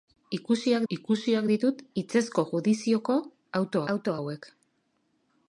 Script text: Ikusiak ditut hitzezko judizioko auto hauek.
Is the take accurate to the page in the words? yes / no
no